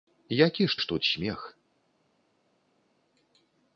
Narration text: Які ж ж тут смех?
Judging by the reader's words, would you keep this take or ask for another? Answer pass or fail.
pass